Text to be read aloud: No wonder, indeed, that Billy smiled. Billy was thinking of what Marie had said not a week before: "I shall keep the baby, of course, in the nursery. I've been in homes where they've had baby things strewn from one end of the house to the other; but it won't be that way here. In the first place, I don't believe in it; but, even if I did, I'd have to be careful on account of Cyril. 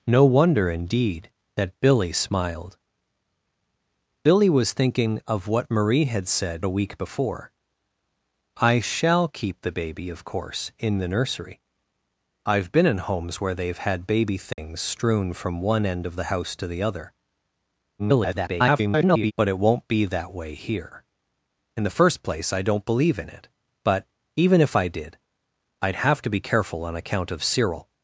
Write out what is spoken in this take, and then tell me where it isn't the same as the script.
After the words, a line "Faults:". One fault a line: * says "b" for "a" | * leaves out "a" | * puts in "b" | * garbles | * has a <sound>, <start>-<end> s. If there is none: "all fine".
No wonder, indeed, that Billy smiled. Billy was thinking of what Marie had said a week before: "I shall keep the baby, of course, in the nursery. I've been in homes where they've had baby things strewn from one end of the house to the other; [garbled] but it won't be that way here. In the first place, I don't believe in it; but, even if I did, I'd have to be careful on account of Cyril.
Faults:
* leaves out "not"
* has a dropout, 14.5-14.6 s
* garbles